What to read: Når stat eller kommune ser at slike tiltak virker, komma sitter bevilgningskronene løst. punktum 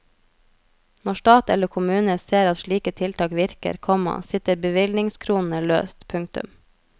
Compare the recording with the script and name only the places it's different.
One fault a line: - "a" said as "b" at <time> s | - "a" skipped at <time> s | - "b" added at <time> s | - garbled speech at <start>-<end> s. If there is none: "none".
none